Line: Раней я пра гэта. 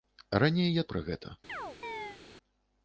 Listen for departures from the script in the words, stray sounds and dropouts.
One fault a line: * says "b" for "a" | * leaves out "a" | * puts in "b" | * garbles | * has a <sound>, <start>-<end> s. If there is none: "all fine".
* has a chirp, 1.5-2.2 s